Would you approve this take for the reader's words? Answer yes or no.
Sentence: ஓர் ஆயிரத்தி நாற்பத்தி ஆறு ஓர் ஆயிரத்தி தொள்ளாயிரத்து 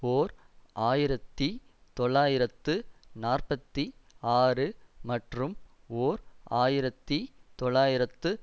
no